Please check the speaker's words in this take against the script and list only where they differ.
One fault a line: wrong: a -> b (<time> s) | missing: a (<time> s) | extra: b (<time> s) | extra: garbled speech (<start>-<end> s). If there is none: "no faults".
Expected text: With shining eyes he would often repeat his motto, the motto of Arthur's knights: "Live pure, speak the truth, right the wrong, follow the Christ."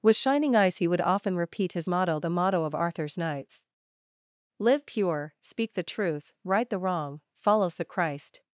wrong: follow -> follows (7.3 s)